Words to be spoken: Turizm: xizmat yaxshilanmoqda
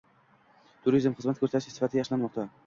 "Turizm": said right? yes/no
yes